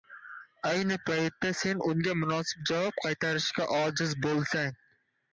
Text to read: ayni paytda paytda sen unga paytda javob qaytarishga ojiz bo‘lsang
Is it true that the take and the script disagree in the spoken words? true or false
true